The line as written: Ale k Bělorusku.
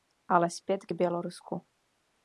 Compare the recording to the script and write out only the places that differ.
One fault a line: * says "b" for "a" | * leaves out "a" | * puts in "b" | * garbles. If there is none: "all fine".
* puts in "zpět"